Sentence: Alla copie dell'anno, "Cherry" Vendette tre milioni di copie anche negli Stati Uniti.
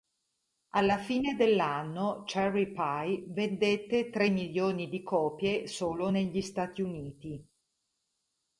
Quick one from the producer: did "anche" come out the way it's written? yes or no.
no